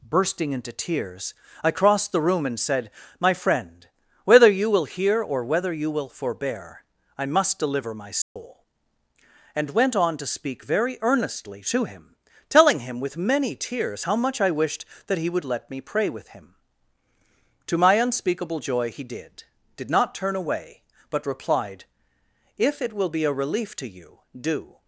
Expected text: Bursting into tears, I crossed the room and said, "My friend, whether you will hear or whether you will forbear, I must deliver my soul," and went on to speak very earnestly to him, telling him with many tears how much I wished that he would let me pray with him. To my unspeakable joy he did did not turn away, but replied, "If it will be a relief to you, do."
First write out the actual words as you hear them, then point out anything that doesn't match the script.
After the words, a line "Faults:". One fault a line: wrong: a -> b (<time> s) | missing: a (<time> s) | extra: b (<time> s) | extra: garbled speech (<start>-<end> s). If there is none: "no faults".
Bursting into tears, I crossed the room and said, "My friend, whether you will hear or whether you will forbear, I must deliver my soul," and went on to speak very earnestly to him, telling him with many tears how much I wished that he would let me pray with him. To my unspeakable joy he did did not turn away, but replied, "If it will be a relief to you, do."
Faults:
no faults